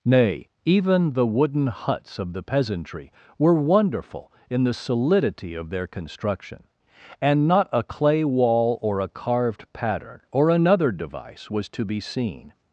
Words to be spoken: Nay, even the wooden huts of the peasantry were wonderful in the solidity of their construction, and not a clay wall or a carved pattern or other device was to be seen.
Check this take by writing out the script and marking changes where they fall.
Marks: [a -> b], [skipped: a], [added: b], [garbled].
Nay, even the wooden huts of the peasantry were wonderful in the solidity of their construction, and not a clay wall or a carved pattern or [other -> another] device was to be seen.